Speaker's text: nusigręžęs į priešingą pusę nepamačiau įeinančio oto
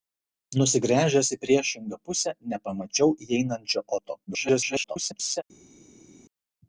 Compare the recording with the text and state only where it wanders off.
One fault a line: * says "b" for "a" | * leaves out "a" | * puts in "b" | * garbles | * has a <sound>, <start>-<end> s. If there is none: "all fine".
* garbles